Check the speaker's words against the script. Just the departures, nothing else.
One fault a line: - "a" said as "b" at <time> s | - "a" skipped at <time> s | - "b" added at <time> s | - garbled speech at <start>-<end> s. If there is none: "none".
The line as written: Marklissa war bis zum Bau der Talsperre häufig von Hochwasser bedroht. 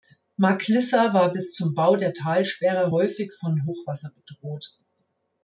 none